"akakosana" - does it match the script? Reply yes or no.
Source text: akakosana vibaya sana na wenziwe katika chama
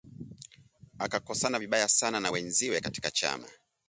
yes